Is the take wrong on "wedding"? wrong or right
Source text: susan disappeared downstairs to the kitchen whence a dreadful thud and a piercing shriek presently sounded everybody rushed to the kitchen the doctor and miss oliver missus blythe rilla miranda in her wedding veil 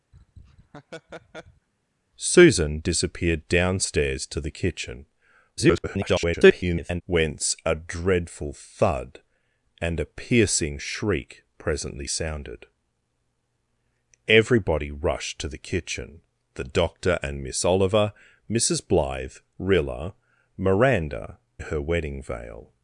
right